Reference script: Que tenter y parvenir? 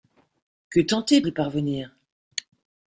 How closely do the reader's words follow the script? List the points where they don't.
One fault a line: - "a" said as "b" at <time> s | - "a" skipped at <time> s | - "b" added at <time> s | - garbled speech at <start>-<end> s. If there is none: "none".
none